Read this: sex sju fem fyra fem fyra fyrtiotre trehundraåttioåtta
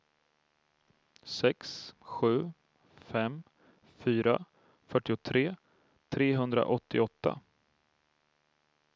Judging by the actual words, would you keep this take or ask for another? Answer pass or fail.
fail